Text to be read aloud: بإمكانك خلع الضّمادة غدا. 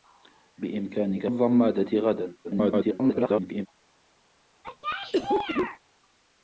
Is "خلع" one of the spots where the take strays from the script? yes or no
yes